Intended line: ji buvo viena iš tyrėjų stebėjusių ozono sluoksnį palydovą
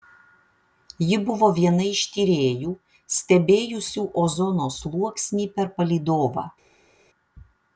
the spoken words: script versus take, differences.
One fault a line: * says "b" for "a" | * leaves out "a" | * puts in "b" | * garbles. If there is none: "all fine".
* puts in "per"